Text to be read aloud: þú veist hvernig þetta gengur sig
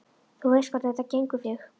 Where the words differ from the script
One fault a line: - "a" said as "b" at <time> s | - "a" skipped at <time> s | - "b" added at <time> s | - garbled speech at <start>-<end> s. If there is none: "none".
none